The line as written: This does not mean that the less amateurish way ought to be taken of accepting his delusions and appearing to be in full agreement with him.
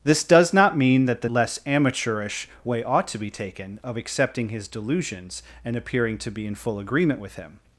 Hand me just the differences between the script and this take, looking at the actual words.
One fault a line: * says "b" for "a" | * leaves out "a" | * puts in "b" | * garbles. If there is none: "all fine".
all fine